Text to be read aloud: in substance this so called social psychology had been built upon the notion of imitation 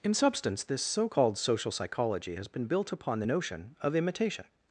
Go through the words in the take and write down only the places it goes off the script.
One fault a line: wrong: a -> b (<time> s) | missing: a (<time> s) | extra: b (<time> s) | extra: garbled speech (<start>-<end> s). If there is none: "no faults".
wrong: had -> has (2.4 s)